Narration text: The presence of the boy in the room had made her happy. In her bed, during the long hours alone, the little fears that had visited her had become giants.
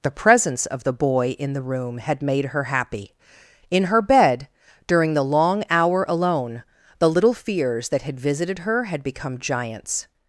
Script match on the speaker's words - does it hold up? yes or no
no